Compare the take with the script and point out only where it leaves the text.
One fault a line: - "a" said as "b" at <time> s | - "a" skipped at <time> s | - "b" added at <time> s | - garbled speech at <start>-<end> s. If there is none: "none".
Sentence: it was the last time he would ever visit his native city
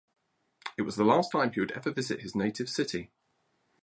none